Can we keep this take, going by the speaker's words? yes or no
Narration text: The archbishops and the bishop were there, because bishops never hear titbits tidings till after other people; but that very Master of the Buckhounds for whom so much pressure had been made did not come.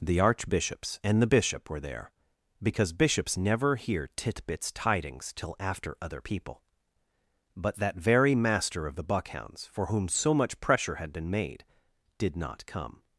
yes